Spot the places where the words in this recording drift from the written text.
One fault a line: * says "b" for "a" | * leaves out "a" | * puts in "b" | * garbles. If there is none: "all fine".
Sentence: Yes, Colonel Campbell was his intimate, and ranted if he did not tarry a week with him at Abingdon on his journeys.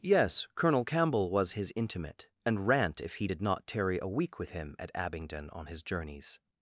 * says "rant" for "ranted"